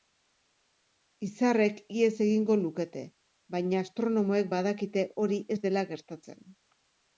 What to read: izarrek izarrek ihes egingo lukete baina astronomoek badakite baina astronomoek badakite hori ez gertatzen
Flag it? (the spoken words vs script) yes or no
yes